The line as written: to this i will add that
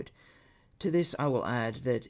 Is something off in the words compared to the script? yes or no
no